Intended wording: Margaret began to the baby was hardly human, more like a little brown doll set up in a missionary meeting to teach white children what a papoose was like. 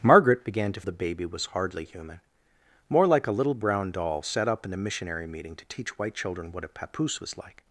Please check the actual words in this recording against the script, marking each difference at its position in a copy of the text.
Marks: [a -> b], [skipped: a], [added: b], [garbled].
Margaret began to the baby was hardly human, more like a little brown doll set up in a missionary meeting to teach white children what a papoose was like.